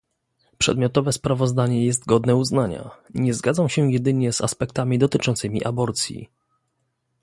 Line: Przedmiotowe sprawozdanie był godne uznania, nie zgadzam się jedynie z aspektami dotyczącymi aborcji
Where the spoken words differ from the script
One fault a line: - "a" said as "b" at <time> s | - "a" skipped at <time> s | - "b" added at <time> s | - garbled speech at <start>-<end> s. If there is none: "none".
- "był" said as "jest" at 1.9 s